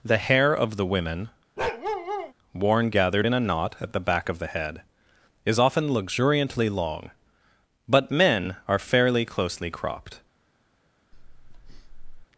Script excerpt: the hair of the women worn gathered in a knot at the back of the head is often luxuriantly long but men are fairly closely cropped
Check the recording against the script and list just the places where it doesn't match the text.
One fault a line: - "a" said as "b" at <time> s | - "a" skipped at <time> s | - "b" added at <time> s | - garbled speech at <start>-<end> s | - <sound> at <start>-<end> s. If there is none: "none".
- bark at 1.6-2.3 s
- breath at 11.1-12.3 s